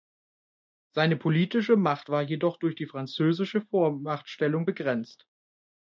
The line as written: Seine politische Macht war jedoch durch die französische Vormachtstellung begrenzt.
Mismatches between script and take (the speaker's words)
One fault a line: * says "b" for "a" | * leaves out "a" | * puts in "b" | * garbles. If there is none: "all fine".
all fine